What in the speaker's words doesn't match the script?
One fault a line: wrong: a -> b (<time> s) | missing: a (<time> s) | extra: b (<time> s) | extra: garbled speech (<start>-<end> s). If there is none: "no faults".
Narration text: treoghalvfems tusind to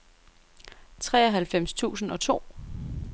extra: og (2.1 s)